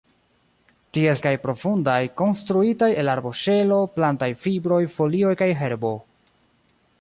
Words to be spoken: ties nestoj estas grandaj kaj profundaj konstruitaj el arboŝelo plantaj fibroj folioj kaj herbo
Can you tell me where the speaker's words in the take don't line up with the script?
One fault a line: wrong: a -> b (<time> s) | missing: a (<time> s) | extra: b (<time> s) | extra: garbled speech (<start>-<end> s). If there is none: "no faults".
missing: nestoj estas grandaj (1.2 s)